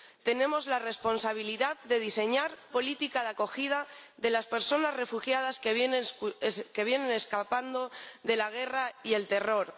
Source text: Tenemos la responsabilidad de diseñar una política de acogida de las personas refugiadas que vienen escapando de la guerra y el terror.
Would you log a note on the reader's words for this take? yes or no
yes